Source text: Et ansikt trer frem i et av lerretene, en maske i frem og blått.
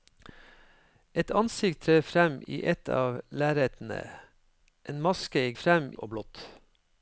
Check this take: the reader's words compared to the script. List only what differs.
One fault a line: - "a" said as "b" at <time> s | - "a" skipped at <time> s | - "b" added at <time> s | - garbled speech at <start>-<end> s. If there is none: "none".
none